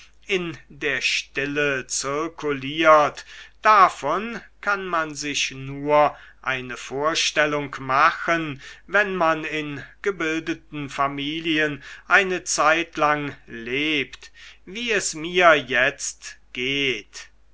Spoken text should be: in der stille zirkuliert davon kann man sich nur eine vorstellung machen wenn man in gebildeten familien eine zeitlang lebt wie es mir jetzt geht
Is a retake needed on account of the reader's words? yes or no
no